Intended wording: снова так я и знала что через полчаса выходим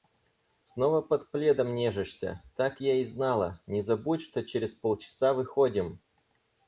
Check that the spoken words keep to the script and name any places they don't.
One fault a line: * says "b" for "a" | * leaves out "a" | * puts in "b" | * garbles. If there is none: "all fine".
* puts in "под пледом нежишься"
* puts in "не забудь"